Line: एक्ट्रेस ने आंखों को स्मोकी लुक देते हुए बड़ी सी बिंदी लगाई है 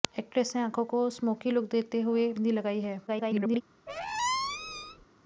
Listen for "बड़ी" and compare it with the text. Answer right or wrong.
wrong